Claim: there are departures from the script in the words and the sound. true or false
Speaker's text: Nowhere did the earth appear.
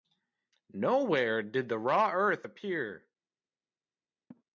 true